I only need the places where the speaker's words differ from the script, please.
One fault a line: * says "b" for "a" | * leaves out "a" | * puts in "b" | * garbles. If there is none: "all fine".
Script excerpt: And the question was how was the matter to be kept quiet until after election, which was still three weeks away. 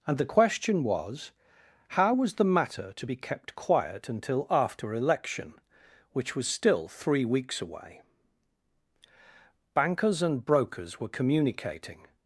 * puts in "Bankers and brokers were communicating"